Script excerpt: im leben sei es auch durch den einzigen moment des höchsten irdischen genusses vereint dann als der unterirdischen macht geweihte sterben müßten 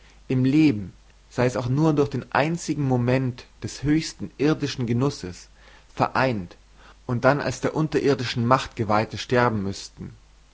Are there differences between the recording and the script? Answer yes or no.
yes